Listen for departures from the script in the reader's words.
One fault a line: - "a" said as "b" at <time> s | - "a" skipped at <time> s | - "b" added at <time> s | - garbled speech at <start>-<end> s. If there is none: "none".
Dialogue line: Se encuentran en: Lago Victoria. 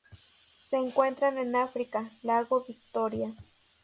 - "África" added at 1.6 s